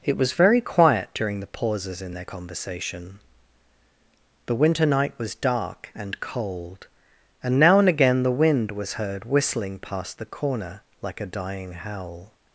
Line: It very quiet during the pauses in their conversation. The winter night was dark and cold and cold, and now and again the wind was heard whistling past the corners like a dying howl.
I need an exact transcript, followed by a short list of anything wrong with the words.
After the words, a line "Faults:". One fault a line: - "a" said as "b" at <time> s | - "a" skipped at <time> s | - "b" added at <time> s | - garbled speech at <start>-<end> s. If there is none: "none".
It was very quiet during the pauses in their conversation. The winter night was dark and cold, and now and again the wind was heard whistling past the corner like a dying howl.
Faults:
- "was" added at 0.2 s
- "cold and" skipped at 7.6 s
- "corners" said as "corner" at 10.3 s